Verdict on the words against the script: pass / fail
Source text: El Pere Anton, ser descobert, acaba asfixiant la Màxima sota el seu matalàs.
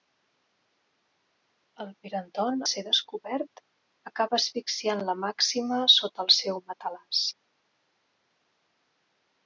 pass